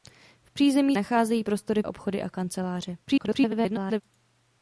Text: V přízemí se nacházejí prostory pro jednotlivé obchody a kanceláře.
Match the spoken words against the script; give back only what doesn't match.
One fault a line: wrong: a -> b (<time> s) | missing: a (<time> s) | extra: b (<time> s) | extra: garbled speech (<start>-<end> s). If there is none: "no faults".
missing: se (1.0 s)
missing: pro jednotlivé (1.8 s)
extra: garbled speech (3.0-4.0 s)